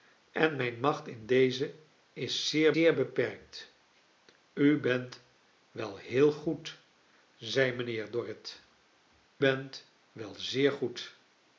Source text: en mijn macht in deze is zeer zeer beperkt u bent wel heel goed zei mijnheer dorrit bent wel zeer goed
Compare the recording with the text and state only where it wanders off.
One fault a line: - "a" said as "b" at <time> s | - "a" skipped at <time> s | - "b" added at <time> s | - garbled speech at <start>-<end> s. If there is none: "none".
none